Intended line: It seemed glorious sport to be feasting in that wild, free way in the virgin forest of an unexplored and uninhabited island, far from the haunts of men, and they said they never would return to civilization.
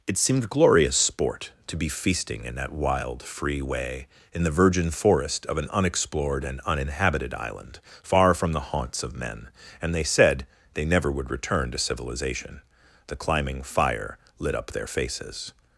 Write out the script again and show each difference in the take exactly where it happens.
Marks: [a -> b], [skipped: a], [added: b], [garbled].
It seemed glorious sport to be feasting in that wild, free way in the virgin forest of an unexplored and uninhabited island, far from the haunts of men, and they said they never would return to civilization. [added: The climbing fire lit up their faces]